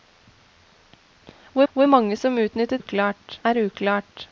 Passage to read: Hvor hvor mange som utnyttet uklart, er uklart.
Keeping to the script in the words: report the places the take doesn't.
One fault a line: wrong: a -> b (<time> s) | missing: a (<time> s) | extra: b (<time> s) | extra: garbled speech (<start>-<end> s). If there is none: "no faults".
no faults